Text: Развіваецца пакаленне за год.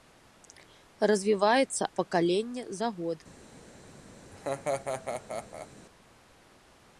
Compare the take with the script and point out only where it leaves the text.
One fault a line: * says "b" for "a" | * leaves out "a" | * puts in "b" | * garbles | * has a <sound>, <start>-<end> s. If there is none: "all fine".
* has a laugh, 4.3-5.7 s